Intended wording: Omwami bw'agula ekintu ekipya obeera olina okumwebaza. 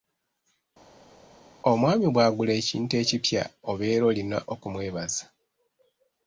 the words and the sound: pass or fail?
pass